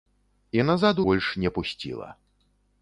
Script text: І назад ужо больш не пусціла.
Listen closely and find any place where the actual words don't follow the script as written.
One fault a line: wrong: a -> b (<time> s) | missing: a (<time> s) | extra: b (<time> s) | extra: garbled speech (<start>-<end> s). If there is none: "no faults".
missing: ужо (1.0 s)